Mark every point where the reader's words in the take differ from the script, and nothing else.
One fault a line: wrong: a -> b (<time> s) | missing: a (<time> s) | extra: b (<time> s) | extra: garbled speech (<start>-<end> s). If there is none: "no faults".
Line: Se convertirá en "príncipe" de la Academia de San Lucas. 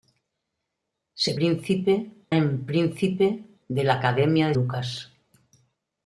wrong: convertirá -> príncipe (1.3 s)
missing: San (4.5 s)